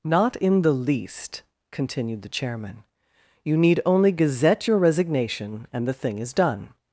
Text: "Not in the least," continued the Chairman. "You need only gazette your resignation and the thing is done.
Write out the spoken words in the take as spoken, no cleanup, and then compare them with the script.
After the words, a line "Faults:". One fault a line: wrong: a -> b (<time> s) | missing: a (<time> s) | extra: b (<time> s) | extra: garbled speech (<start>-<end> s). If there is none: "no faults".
"Not in the least," continued the Chairman. "You need only gazette your resignation and the thing is done.
Faults:
no faults